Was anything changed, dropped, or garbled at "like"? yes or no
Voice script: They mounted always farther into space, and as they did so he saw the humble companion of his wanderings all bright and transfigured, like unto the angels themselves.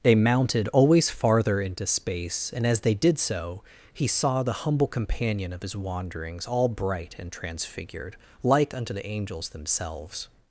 no